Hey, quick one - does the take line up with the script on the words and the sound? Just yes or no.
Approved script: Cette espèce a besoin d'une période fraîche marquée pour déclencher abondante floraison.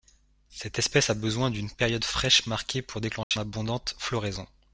no